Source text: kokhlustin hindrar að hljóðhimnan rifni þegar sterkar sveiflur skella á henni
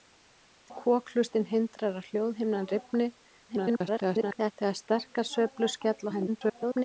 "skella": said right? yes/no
yes